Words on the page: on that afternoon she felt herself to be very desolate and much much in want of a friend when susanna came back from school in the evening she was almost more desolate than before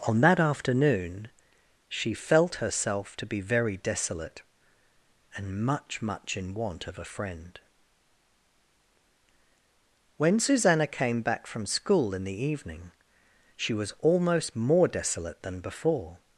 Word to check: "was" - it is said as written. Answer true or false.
true